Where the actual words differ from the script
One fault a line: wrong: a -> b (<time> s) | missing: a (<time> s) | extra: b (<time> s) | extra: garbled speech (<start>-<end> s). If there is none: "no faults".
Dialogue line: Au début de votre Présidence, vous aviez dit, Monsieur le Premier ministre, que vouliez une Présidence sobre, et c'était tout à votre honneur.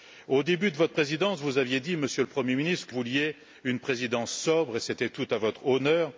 no faults